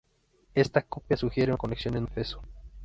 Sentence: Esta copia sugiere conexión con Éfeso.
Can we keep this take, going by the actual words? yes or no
yes